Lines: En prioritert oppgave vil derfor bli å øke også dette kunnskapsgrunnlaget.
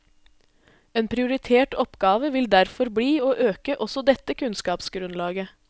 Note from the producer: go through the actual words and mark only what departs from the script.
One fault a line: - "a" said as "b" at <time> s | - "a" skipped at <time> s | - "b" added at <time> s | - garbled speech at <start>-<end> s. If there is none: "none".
none